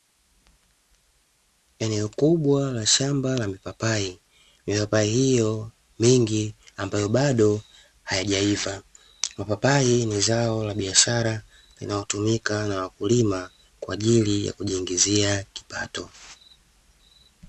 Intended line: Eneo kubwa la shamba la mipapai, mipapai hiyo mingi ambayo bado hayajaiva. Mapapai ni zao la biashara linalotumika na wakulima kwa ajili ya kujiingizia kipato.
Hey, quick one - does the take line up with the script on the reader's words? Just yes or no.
yes